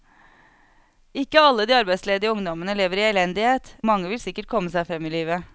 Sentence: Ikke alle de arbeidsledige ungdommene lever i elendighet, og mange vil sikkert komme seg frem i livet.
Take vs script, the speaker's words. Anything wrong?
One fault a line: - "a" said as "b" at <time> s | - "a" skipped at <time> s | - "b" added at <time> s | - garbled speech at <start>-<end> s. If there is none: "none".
- "og" skipped at 3.7 s